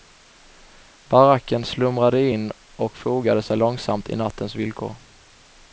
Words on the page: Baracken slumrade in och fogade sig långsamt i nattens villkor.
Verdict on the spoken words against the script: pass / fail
pass